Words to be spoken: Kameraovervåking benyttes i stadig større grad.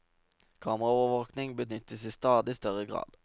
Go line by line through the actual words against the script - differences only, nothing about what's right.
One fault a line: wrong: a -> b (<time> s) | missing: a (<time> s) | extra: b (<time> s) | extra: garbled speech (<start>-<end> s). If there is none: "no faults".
no faults